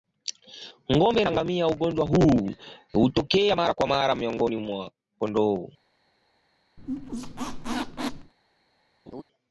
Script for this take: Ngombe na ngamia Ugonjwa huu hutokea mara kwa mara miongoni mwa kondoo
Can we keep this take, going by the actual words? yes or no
yes